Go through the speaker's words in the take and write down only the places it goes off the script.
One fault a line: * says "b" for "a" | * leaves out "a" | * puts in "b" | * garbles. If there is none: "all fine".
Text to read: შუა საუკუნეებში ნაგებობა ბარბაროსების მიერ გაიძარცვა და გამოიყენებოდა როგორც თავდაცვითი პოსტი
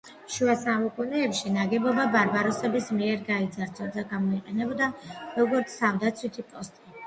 all fine